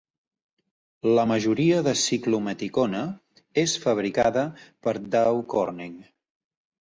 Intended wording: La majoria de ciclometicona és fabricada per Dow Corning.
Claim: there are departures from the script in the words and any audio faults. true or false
false